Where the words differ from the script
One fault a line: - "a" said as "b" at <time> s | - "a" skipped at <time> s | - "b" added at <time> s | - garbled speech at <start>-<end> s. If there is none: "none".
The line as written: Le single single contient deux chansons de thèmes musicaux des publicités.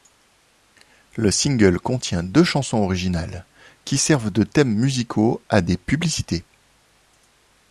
- "single" skipped at 1.8 s
- "originales qui servent" added at 2.8 s
- "à" added at 5.5 s